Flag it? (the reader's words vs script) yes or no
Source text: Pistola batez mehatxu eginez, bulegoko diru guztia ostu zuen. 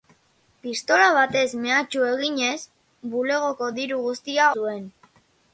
yes